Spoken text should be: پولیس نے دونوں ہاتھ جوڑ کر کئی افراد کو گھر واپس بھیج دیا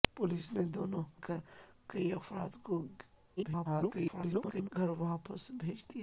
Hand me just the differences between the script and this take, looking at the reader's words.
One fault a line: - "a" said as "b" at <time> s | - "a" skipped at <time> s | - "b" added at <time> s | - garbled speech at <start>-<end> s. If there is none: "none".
- "ہاتھ جوڑ" skipped at 1.0 s
- garbled speech at 3.4-4.7 s